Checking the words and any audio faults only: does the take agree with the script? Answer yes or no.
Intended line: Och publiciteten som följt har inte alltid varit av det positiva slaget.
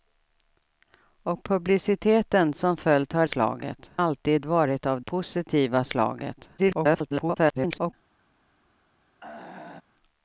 no